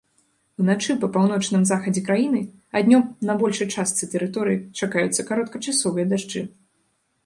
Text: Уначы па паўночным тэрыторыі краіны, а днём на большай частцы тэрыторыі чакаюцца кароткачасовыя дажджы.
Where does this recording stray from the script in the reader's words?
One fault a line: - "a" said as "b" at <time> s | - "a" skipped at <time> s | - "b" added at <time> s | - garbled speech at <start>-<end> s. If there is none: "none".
- "тэрыторыі" said as "захадзе" at 1.7 s